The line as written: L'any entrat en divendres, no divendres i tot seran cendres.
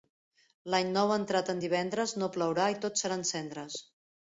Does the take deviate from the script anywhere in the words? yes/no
yes